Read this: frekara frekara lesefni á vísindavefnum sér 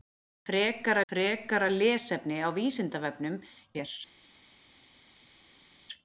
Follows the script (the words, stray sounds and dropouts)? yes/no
yes